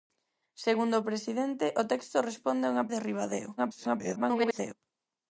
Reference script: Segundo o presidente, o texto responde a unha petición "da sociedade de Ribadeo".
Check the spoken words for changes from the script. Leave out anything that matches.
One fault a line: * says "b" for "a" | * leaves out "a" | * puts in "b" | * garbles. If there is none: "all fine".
* leaves out "petición da sociedade"
* garbles